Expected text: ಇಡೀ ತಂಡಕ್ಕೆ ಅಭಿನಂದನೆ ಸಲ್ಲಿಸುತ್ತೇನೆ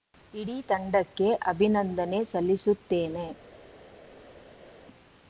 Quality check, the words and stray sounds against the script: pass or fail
pass